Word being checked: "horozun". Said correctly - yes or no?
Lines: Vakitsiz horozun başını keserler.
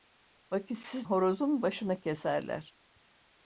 yes